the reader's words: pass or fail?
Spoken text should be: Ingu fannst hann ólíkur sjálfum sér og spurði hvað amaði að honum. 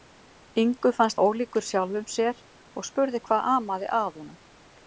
fail